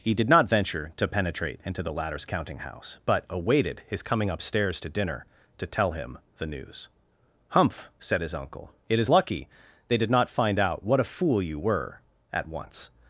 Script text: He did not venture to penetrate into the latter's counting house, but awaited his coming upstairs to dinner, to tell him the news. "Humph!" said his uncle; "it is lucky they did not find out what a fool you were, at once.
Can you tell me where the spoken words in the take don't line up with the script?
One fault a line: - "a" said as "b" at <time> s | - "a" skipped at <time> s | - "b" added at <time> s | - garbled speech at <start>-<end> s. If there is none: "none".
none